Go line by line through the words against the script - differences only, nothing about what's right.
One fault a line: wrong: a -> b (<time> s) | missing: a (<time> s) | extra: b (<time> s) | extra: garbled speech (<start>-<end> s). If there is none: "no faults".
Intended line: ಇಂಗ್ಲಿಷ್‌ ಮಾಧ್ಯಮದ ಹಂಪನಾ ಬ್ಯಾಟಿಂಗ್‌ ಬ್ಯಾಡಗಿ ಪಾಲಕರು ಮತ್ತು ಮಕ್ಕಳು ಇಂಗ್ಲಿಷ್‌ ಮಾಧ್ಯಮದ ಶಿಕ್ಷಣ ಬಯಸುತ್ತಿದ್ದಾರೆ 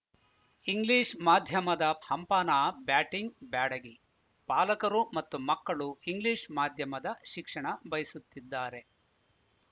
no faults